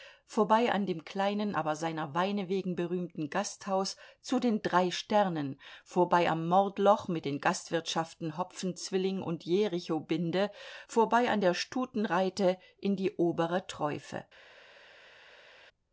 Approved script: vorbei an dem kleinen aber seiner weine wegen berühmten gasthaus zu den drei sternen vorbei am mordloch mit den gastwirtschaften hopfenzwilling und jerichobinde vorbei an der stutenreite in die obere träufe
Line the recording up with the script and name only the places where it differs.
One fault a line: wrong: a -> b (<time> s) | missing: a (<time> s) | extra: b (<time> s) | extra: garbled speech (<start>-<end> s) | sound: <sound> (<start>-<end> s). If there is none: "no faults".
no faults